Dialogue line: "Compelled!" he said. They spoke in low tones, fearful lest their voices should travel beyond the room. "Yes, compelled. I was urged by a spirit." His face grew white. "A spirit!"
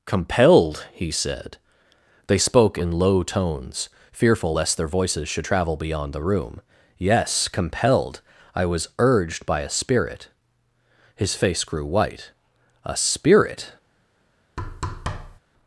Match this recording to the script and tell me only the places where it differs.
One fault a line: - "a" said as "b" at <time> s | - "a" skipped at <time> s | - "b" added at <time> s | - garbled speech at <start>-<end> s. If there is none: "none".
none